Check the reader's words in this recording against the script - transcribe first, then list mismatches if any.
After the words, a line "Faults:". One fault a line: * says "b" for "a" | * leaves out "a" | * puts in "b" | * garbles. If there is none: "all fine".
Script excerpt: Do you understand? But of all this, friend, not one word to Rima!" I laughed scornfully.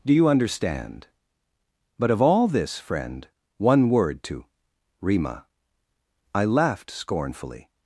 Do you understand? But of all this, friend, one word to Rima!" I laughed scornfully.
Faults:
* leaves out "not"